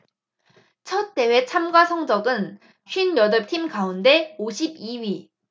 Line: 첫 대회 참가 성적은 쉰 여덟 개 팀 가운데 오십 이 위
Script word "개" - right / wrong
wrong